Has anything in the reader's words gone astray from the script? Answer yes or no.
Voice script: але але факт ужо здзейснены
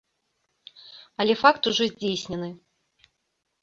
yes